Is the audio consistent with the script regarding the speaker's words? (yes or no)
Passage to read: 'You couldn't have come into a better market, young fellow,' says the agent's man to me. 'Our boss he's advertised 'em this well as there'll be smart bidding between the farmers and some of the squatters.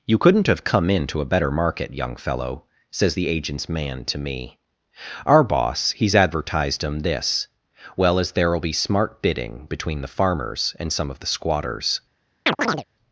yes